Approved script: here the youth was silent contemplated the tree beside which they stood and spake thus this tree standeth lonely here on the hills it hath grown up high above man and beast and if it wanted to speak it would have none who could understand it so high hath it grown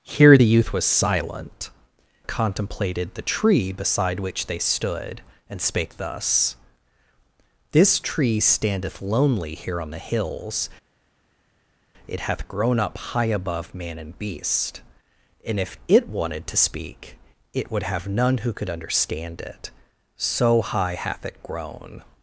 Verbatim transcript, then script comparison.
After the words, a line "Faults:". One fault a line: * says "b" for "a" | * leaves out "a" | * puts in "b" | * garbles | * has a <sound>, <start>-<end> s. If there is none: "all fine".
here the youth was silent contemplated the tree beside which they stood and spake thus this tree standeth lonely here on the hills it hath grown up high above man and beast and if it wanted to speak it would have none who could understand it so high hath it grown
Faults:
all fine